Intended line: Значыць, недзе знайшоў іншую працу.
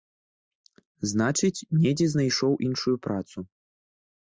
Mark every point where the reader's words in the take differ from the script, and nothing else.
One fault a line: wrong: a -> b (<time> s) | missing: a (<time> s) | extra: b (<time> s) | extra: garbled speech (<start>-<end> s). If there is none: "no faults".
no faults